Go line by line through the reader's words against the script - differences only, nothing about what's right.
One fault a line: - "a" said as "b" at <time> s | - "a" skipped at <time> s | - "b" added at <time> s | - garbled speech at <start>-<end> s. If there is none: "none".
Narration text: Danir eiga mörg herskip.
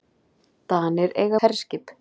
- "mörg" skipped at 1.4 s